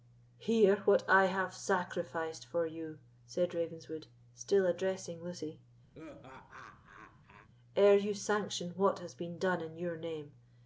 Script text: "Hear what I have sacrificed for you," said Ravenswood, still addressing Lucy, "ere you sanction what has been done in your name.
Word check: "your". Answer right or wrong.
right